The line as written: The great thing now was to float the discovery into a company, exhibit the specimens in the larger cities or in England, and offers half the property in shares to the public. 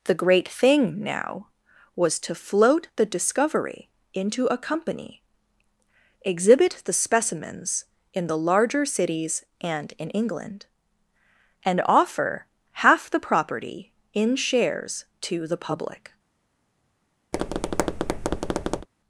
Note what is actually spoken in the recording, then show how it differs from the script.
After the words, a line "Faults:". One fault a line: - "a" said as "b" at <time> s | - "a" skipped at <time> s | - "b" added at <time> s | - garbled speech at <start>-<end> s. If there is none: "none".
The great thing now was to float the discovery into a company, exhibit the specimens in the larger cities and in England, and offer half the property in shares to the public.
Faults:
- "or" said as "and" at 9.6 s
- "offers" said as "offer" at 11.8 s